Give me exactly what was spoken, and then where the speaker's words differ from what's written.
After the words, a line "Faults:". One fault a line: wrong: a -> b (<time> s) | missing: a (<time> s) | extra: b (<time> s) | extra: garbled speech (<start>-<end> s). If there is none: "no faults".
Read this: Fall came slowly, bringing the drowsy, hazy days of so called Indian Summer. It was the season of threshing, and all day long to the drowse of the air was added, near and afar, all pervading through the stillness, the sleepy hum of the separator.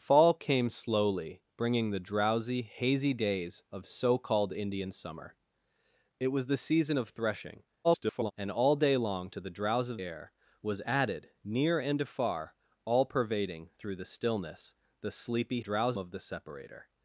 Fall came slowly, bringing the drowsy, hazy days of so called Indian Summer. It was the season of threshing, [garbled] and all day long to the drowse of air was added, near and afar, all pervading through the stillness, the sleepy drowse of the separator.
Faults:
extra: garbled speech (7.8-8.3 s)
missing: the (10.0 s)
wrong: hum -> drowse (15.6 s)